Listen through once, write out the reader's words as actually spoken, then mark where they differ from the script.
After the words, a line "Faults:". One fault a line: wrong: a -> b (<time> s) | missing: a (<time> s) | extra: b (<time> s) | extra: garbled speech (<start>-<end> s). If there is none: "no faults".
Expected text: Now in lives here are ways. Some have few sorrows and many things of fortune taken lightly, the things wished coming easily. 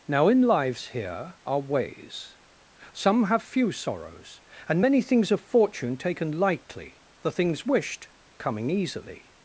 Now in lives here are ways. Some have few sorrows and many things of fortune taken lightly, the things wished coming easily.
Faults:
no faults